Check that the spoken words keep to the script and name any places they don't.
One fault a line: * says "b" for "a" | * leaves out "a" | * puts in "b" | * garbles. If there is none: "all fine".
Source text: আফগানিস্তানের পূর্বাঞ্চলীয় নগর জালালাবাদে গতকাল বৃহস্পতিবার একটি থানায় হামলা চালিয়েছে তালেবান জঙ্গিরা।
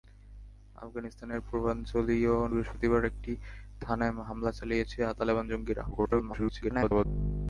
* leaves out "নগর জালালাবাদে গতকাল"
* garbles